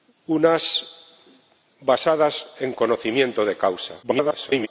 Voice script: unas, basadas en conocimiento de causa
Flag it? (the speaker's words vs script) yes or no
yes